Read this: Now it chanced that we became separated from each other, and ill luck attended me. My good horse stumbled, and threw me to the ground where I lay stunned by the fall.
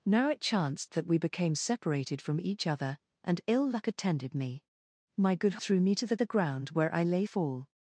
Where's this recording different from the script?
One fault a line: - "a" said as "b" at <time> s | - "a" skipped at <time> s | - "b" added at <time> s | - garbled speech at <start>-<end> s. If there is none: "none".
- "horse stumbled and" skipped at 5.6 s
- "the" added at 6.2 s
- "stunned by the" skipped at 7.2 s